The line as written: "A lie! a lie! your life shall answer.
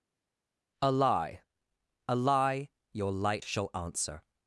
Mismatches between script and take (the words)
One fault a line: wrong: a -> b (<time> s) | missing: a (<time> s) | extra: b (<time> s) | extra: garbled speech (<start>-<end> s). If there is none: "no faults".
wrong: life -> light (3.1 s)